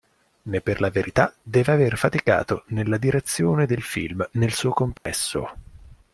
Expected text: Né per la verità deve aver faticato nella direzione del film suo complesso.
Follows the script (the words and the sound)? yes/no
no